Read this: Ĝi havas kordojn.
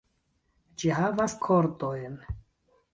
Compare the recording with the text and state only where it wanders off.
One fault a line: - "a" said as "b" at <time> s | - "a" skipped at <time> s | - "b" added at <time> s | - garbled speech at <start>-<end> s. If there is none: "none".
none